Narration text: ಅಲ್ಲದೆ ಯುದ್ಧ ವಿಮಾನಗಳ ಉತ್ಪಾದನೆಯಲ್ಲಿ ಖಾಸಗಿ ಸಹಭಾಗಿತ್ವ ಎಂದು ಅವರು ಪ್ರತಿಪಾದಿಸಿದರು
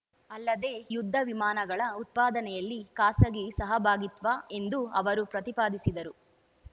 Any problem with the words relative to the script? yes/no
no